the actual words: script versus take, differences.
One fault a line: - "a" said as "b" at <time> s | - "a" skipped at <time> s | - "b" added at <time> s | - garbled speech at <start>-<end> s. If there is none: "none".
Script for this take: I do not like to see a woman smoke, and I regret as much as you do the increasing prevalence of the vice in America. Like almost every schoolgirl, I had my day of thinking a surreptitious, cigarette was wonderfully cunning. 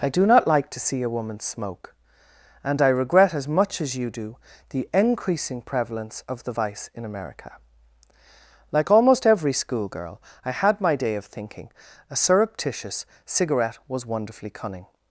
none